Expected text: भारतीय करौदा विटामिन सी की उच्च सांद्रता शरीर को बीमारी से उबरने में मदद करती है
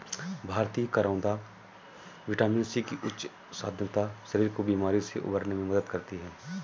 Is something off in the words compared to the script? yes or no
no